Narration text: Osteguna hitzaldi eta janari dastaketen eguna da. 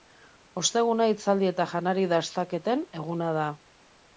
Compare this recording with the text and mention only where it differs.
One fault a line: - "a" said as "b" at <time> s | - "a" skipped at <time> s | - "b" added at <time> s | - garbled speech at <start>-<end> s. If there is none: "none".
none